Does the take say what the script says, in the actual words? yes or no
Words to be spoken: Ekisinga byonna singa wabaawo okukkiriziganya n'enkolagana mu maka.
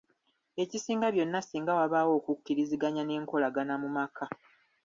yes